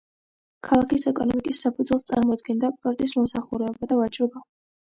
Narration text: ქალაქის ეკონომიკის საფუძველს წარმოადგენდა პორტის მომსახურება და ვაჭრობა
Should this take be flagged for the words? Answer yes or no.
no